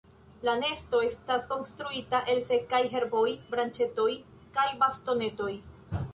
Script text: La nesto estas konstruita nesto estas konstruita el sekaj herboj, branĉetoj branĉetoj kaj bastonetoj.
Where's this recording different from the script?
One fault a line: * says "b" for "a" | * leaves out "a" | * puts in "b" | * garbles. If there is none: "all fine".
* leaves out "nesto estas konstruita"
* leaves out "branĉetoj"